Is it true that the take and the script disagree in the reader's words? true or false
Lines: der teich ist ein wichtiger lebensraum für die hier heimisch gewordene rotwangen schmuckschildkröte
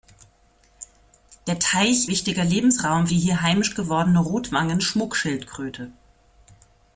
true